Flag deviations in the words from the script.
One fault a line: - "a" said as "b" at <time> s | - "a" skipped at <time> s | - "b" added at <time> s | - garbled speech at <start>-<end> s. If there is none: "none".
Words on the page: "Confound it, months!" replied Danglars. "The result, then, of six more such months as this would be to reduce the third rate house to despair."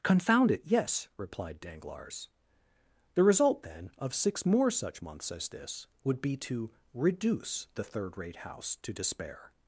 - "months" said as "yes" at 0.7 s